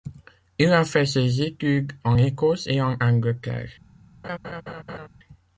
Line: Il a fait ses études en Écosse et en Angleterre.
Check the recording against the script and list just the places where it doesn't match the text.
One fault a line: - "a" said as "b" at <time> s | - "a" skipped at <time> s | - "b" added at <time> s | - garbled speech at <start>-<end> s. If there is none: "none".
none